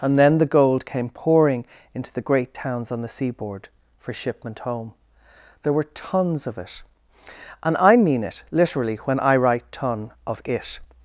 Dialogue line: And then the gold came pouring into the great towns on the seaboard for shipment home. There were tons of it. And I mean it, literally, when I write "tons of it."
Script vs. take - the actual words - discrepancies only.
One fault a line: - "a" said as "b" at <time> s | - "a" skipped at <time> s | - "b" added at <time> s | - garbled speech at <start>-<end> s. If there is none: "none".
- "tons" said as "ton" at 9.7 s